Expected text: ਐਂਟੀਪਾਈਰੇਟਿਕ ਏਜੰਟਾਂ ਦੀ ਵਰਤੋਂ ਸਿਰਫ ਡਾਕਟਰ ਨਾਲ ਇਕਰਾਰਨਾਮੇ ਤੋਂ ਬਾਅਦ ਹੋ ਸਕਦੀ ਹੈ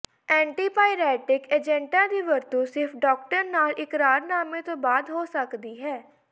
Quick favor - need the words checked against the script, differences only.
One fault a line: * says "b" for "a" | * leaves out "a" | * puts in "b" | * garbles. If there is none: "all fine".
all fine